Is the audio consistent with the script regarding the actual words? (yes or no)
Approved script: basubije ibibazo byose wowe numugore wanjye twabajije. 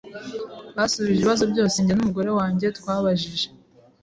no